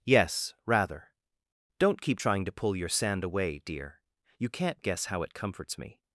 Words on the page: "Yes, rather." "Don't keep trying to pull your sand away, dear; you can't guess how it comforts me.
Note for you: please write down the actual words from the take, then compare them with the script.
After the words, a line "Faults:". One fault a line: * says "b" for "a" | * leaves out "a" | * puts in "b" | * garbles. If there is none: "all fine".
"Yes, rather." "Don't keep trying to pull your sand away, dear; you can't guess how it comforts me.
Faults:
all fine